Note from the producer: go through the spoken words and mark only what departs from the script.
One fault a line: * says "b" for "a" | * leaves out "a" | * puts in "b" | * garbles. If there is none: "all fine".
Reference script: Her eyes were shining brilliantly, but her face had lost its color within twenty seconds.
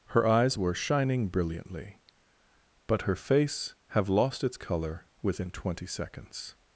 * says "have" for "had"